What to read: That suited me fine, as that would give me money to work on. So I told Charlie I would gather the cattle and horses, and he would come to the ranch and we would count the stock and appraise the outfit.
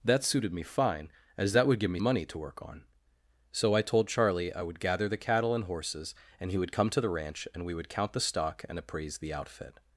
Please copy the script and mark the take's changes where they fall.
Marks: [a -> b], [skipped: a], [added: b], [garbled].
That suited me fine, as that would give me money to work on. So I told Charlie I would gather the cattle and horses, and he would come to the ranch and we would count the stock and appraise the outfit.